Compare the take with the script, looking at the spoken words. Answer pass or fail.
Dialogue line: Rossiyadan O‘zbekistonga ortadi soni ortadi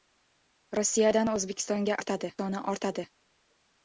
pass